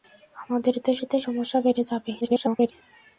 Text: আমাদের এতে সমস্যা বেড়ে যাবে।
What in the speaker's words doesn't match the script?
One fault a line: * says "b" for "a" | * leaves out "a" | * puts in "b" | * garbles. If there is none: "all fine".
* puts in "এতে"
* garbles